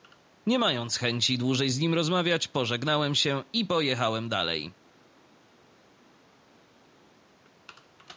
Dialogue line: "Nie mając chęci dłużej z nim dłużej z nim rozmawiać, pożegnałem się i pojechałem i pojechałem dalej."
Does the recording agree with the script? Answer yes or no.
no